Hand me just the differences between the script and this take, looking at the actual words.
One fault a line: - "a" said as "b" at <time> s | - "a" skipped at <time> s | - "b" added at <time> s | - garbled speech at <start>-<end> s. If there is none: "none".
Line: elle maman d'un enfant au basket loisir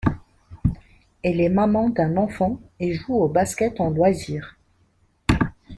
- "est" added at 1.4 s
- "et joue" added at 2.8 s
- "en" added at 3.8 s